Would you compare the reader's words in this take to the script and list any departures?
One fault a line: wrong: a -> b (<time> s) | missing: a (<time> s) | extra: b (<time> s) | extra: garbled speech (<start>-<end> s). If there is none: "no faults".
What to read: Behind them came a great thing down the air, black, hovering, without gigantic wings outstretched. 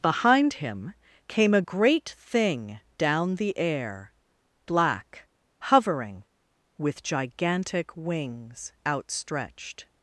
wrong: them -> him (0.5 s)
wrong: without -> with (6.8 s)